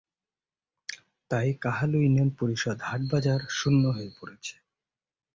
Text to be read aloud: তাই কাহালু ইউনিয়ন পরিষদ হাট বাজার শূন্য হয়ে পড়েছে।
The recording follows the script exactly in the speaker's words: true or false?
true